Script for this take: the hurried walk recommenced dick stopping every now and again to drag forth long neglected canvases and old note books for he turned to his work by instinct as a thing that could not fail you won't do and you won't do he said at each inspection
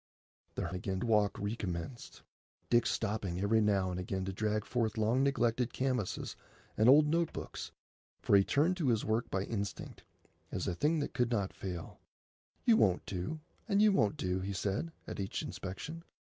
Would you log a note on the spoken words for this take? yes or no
yes